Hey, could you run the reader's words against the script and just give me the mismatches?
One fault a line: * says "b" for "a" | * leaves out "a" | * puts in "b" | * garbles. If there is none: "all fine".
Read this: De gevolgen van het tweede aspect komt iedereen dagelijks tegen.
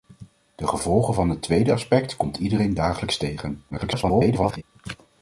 * garbles